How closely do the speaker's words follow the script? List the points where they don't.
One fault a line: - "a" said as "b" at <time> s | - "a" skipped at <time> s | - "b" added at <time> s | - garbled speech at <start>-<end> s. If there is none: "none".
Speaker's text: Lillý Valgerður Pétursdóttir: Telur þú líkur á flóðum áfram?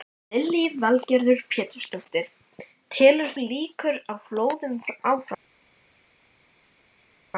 - "þú" skipped at 3.3 s